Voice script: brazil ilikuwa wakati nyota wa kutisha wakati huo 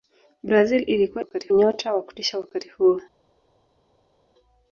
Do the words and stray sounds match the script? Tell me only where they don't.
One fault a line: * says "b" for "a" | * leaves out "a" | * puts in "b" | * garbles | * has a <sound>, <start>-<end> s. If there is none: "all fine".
all fine